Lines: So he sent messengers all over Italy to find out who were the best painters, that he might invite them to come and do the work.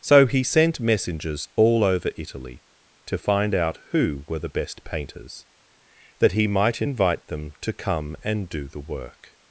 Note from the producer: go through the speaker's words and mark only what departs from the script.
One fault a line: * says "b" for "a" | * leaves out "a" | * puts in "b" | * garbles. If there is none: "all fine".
all fine